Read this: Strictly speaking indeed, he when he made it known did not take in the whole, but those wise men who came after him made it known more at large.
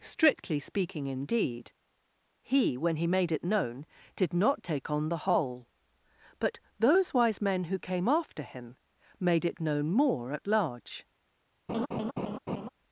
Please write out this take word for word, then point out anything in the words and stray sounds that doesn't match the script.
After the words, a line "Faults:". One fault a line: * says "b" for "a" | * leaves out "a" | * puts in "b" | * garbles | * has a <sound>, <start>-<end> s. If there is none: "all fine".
Strictly speaking indeed, he when he made it known did not take on the whole, but those wise men who came after him made it known more at large.
Faults:
* says "on" for "in"
* has a laugh, 11.7-12.7 s